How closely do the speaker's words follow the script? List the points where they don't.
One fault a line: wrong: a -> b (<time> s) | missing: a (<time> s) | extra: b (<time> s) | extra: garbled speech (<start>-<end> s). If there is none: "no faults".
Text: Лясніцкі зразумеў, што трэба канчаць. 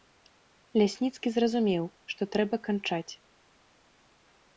no faults